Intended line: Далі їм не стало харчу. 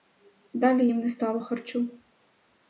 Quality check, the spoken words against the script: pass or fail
pass